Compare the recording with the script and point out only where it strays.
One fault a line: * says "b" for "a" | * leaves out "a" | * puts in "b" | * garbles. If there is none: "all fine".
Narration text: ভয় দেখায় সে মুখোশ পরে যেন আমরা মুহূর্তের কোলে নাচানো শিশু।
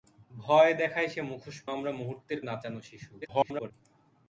* leaves out "পরে যেন"
* leaves out "কোলে"
* garbles